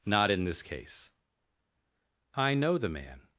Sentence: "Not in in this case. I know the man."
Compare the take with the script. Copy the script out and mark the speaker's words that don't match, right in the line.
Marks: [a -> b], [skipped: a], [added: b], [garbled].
"Not in [skipped: in] this case. I know the man."